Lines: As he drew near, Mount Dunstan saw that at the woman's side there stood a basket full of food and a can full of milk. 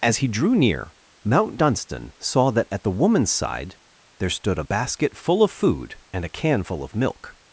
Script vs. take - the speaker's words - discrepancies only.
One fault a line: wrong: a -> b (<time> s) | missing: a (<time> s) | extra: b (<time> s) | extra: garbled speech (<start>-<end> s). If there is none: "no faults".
no faults